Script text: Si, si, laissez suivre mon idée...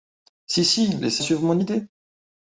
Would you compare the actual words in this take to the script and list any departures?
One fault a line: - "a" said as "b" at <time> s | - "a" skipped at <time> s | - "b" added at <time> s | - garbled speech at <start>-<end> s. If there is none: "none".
none